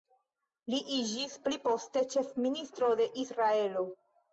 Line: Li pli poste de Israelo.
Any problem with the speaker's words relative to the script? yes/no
yes